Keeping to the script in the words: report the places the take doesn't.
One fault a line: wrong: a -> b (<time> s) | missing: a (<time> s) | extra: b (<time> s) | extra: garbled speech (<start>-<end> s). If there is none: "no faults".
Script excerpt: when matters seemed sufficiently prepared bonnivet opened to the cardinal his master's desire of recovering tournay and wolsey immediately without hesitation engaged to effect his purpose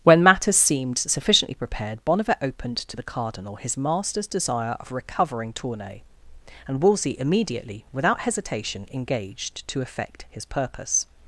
no faults